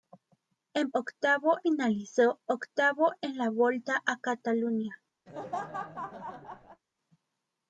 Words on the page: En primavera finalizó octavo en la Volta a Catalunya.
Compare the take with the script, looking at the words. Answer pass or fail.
fail